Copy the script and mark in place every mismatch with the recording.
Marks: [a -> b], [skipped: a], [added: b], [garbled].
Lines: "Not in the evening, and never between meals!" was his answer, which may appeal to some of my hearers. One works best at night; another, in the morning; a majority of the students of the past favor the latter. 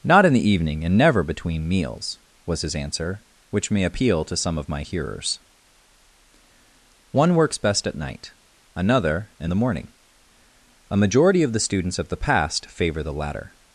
"Not in the evening, and never between meals!" was his answer, which may appeal to some of my hearers. One works best at night; another, in the morning; a majority of the students of the past favor the latter.